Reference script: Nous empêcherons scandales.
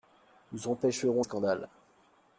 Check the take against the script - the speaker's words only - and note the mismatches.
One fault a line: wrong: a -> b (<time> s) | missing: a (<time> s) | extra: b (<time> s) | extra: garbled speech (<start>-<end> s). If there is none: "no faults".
no faults